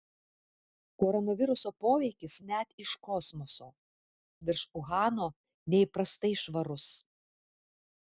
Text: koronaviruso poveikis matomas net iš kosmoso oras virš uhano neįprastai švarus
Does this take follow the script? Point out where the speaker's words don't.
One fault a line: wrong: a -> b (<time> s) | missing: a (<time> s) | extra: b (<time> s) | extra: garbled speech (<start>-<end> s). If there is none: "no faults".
missing: matomas (2.4 s)
missing: oras (3.7 s)